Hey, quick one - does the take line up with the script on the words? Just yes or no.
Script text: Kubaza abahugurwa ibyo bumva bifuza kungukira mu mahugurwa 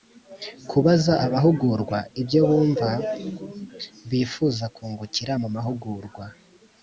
yes